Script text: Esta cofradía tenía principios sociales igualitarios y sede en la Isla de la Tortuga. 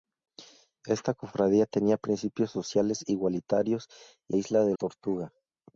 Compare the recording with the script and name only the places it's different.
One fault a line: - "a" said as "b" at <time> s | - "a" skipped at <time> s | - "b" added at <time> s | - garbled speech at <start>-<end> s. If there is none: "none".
- "sede en la" skipped at 4.3 s
- "la" skipped at 4.7 s